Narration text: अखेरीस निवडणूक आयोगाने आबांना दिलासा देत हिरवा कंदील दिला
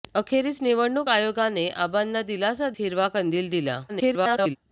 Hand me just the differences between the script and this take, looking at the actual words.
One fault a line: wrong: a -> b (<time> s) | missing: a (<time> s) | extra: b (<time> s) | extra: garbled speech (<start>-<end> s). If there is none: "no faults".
missing: देत (2.7 s)
extra: garbled speech (3.9-4.6 s)